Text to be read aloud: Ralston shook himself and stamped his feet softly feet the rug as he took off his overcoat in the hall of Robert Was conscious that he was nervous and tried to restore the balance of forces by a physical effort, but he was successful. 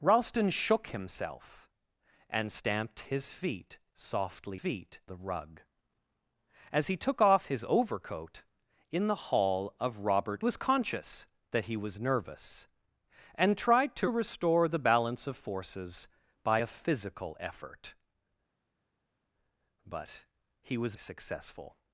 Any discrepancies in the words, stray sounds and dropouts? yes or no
no